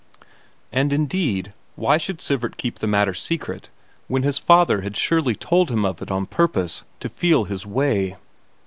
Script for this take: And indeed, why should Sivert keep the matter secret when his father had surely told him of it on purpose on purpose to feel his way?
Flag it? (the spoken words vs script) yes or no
yes